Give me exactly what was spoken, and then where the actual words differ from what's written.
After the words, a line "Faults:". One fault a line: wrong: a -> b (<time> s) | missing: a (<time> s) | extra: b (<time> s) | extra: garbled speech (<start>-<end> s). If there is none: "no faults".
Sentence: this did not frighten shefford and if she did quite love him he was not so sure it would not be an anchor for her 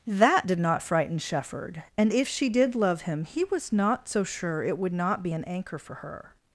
that did not frighten shefford and if she did love him he was not so sure it would not be an anchor for her
Faults:
wrong: this -> that (0.1 s)
missing: quite (2.7 s)